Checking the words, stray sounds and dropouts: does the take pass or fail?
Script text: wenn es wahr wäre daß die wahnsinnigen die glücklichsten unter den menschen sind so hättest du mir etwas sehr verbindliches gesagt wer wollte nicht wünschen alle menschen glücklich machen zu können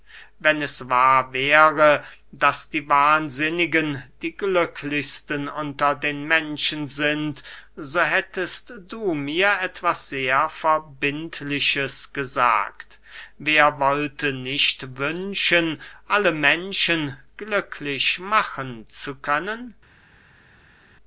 pass